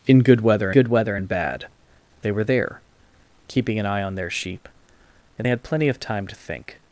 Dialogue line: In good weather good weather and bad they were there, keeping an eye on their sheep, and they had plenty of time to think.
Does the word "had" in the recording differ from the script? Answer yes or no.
no